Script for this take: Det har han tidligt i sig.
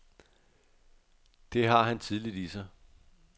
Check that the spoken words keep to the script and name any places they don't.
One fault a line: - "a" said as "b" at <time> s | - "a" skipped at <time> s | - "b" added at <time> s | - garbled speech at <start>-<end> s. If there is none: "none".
none